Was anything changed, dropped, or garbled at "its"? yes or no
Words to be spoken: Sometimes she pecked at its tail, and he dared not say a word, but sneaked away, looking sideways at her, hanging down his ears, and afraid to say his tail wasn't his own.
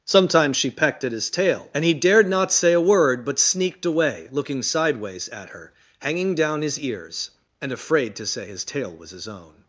yes